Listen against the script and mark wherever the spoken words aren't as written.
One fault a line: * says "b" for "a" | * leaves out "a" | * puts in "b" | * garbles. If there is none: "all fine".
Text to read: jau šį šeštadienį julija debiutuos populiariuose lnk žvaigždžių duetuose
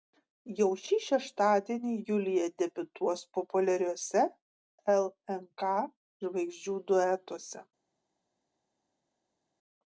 all fine